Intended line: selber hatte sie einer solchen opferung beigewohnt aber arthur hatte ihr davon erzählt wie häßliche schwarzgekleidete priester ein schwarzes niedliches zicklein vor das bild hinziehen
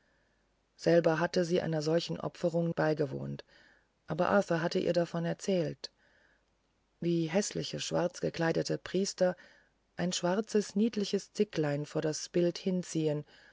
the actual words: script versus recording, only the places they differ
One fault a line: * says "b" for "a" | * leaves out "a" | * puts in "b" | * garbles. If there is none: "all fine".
all fine